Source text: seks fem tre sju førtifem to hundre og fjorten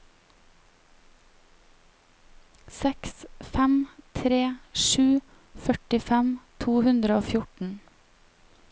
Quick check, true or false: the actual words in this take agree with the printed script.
true